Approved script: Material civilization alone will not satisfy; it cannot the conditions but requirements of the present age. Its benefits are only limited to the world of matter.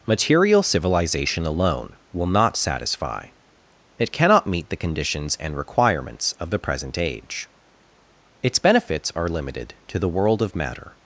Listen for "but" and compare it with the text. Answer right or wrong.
wrong